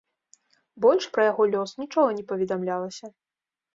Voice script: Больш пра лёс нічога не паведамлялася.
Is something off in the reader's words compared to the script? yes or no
yes